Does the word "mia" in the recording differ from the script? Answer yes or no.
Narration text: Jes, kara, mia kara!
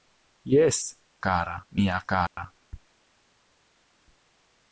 no